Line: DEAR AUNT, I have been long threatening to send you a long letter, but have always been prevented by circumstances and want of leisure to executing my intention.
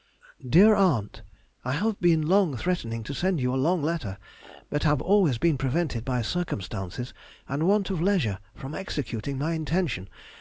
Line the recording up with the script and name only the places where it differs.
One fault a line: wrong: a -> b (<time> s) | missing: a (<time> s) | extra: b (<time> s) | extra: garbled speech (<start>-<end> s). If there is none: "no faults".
wrong: to -> from (8.5 s)